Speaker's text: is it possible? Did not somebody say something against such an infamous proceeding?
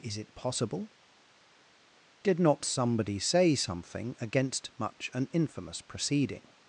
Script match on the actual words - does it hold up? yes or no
no